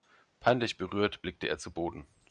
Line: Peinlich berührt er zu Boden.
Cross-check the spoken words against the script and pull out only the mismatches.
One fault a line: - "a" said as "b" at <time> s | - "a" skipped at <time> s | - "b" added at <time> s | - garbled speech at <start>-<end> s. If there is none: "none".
- "blickte" added at 1.2 s